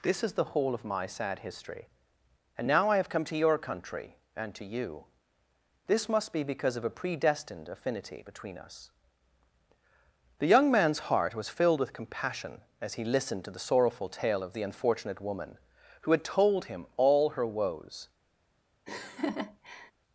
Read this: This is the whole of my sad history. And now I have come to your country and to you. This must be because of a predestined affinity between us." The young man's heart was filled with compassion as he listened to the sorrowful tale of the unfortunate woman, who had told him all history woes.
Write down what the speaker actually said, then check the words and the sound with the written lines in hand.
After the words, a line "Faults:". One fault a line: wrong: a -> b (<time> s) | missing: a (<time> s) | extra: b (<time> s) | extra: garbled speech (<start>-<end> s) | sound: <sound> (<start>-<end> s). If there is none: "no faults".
This is the whole of my sad history. And now I have come to your country and to you. This must be because of a predestined affinity between us." The young man's heart was filled with compassion as he listened to the sorrowful tale of the unfortunate woman, who had told him all her woes.
Faults:
wrong: history -> her (17.3 s)
sound: laugh (18.9-19.9 s)